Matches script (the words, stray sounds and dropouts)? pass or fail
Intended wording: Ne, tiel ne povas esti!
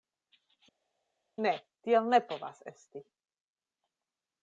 pass